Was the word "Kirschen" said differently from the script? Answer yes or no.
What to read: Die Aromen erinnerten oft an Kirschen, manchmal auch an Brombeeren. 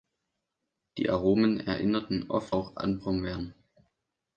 yes